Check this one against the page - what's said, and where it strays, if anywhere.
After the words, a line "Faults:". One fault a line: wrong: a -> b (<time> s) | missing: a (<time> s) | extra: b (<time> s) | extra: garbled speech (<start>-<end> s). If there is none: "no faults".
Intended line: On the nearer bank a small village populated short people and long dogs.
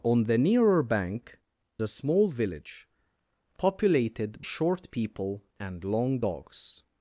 On the nearer bank a small village populated short people and long dogs.
Faults:
no faults